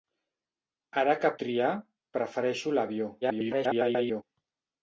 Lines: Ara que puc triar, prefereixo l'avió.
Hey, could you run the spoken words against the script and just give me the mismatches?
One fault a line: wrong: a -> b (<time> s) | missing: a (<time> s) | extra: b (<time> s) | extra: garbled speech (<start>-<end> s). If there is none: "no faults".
missing: puc (1.3 s)
extra: garbled speech (3.2-4.2 s)